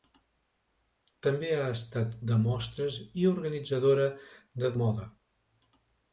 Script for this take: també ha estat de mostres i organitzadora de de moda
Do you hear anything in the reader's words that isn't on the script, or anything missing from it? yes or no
no